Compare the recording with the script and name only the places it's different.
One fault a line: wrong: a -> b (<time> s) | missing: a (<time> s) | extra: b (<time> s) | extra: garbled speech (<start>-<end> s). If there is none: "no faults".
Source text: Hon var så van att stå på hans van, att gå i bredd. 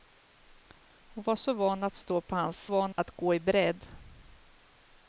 no faults